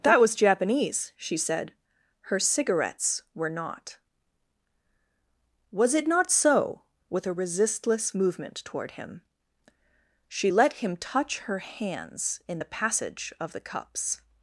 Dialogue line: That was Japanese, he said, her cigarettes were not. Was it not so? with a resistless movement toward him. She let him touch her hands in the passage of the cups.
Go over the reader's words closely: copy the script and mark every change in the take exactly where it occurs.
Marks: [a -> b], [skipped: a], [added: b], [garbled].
That was Japanese, [he -> she] said, her cigarettes were not. Was it not so? with a resistless movement toward him. She let him touch her hands in the passage of the cups.